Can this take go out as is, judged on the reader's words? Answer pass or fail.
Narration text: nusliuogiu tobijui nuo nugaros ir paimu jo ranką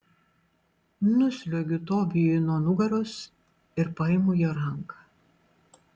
pass